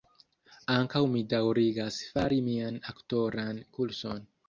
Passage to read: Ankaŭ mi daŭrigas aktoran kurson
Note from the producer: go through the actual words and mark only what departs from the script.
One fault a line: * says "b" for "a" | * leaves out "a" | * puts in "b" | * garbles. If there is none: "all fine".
* puts in "fari mian"